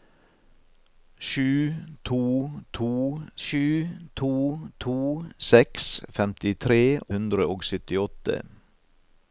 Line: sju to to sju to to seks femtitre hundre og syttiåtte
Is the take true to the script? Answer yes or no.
yes